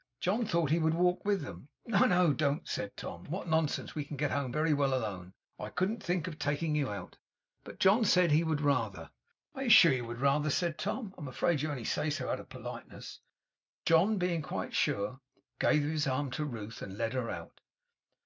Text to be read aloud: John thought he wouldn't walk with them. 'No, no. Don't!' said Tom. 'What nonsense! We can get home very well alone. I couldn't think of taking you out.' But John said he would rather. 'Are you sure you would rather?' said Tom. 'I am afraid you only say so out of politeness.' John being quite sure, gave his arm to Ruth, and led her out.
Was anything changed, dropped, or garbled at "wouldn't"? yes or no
yes